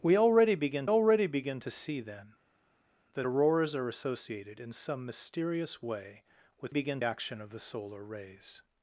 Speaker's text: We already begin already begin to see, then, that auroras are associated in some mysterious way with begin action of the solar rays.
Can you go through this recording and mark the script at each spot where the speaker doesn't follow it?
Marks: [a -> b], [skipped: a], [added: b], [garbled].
We already begin already begin to see, then, that auroras are associated in some mysterious way with begin action of the solar rays.